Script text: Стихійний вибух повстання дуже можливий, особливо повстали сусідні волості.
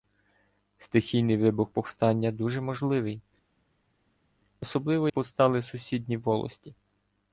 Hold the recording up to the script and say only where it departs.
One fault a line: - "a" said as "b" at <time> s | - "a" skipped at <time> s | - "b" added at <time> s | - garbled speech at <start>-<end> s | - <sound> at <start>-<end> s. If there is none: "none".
none